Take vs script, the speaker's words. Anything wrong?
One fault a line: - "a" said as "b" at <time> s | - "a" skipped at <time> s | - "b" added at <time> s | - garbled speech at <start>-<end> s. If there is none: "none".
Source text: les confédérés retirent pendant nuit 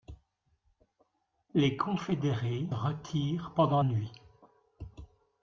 none